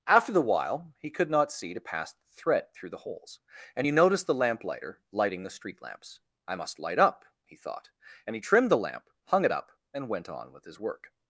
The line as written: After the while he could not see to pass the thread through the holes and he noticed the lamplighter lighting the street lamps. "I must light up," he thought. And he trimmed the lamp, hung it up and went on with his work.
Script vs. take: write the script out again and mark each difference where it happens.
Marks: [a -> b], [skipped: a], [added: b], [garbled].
After the while he could not see to pass the thread through the holes and he noticed the lamplighter lighting the street lamps. "I must light up," he thought. And he trimmed the lamp, hung it up and went on with his work.